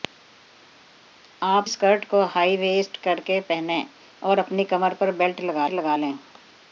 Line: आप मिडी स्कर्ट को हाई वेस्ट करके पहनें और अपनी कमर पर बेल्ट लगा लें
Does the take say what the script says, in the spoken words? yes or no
no